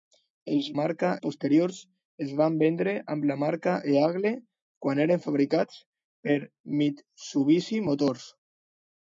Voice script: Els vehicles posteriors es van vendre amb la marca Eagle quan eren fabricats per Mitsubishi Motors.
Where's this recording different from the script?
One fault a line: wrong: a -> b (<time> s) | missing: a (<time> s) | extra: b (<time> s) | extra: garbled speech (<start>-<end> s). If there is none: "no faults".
wrong: vehicles -> marca (0.8 s)